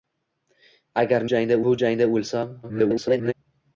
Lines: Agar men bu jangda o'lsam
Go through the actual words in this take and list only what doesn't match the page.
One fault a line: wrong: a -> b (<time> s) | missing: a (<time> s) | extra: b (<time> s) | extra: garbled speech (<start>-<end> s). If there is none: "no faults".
wrong: men -> jangda (1.4 s)
extra: garbled speech (2.6-3.3 s)